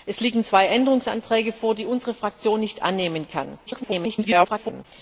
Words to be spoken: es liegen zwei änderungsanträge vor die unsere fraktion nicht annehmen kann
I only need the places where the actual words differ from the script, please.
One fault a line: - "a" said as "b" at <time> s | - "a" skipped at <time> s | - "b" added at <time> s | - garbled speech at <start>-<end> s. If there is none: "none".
- garbled speech at 3.7-4.9 s